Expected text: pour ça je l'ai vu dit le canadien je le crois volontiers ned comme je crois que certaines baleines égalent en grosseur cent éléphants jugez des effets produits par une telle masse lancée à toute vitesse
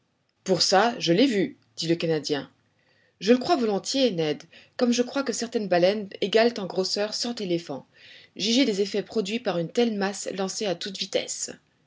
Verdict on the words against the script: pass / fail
pass